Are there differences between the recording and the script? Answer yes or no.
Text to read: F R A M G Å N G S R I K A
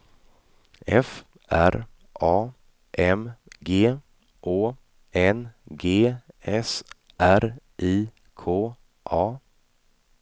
no